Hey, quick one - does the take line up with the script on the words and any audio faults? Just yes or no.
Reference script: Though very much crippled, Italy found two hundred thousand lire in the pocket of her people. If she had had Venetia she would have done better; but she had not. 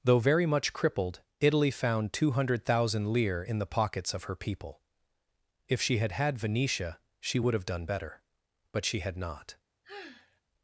no